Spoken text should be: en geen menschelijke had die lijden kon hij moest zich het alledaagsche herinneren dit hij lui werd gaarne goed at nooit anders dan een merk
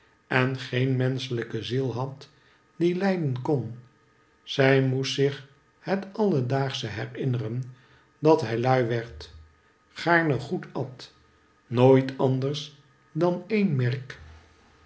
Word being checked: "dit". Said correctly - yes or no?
no